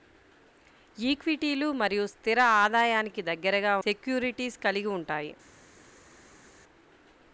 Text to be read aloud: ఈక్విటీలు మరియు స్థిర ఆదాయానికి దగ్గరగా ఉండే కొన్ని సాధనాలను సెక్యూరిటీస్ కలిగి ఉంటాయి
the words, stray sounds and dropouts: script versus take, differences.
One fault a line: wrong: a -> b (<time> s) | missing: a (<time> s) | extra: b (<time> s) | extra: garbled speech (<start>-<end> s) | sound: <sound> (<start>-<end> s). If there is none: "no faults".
missing: ఉండే కొన్ని సాధనాలను (3.7 s)